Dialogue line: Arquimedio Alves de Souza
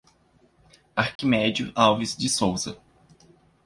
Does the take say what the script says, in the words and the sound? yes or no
no